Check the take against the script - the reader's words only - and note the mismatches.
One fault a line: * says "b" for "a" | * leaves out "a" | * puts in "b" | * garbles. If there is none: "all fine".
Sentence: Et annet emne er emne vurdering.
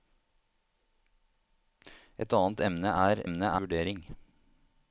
all fine